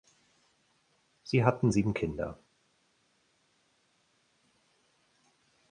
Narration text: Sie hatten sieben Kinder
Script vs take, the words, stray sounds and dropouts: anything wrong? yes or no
no